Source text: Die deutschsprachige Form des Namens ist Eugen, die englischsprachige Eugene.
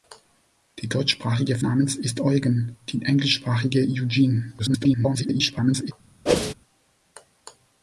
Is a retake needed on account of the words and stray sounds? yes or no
yes